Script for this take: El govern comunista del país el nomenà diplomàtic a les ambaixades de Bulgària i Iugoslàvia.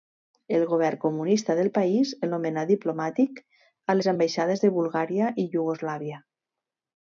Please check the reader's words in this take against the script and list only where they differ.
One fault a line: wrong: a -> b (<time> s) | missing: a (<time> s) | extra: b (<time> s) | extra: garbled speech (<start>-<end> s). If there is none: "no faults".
no faults